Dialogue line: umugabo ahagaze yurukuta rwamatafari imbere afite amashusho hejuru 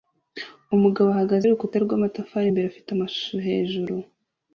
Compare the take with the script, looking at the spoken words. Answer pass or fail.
pass